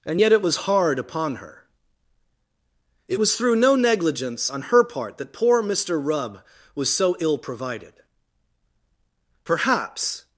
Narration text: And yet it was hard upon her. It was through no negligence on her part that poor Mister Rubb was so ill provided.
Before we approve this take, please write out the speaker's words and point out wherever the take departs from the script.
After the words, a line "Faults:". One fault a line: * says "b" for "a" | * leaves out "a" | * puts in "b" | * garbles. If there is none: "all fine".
And yet it was hard upon her. It was through no negligence on her part that poor Mister Rubb was so ill provided. "Perhaps
Faults:
* puts in "Perhaps"